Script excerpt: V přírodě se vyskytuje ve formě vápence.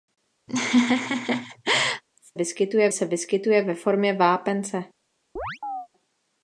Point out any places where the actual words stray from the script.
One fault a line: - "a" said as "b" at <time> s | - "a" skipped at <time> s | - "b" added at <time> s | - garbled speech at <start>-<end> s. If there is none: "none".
- "přírodě" said as "vyskytuje" at 2.3 s